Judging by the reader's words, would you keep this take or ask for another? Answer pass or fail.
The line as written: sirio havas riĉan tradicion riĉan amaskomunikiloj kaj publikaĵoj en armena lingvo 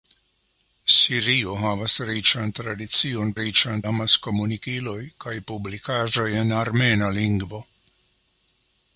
pass